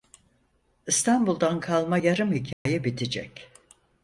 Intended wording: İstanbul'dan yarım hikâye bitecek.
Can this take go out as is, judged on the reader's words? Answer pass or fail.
fail